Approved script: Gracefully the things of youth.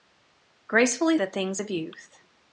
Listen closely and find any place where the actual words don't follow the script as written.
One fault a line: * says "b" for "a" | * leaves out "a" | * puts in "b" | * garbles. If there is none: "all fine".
all fine